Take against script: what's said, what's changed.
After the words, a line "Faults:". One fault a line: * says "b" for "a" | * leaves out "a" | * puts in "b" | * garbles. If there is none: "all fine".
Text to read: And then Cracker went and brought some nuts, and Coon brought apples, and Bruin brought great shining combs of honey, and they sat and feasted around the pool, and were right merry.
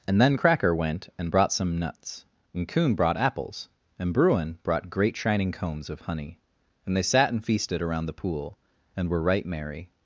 And then Cracker went and brought some nuts, and Coon brought apples, and Bruin brought great shining combs of honey, and they sat and feasted around the pool, and were right merry.
Faults:
all fine